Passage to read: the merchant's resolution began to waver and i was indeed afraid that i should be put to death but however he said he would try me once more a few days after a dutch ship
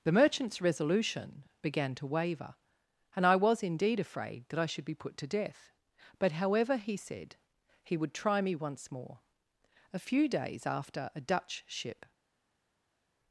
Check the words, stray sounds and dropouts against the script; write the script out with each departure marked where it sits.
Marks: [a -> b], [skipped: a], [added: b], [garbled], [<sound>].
the merchant's resolution began to waver and i was indeed afraid that i should be put to death but however he said he would try me once more a few days after a dutch ship